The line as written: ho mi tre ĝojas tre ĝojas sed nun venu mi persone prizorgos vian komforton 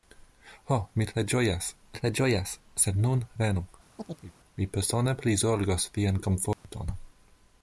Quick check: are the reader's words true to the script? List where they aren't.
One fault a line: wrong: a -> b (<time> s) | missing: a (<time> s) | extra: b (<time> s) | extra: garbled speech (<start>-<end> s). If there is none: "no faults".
no faults